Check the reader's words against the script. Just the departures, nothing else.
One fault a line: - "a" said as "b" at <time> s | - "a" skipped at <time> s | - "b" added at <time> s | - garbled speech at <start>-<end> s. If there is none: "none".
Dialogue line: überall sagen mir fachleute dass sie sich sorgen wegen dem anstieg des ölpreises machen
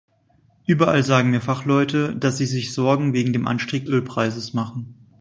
- "des" skipped at 3.9 s